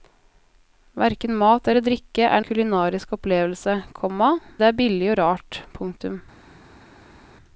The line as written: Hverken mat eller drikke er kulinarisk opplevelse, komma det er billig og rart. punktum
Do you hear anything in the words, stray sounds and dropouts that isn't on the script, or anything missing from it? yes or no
no